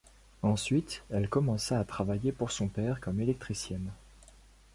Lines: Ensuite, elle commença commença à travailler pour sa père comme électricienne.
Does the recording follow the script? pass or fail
fail